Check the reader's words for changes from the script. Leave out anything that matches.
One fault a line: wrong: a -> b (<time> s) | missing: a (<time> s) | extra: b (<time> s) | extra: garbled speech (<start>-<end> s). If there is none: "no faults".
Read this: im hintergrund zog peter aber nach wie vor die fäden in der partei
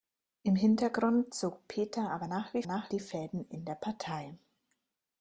wrong: vor -> nach (2.6 s)